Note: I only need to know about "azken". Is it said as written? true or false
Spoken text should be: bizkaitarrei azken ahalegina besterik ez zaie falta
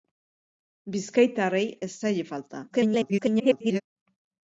false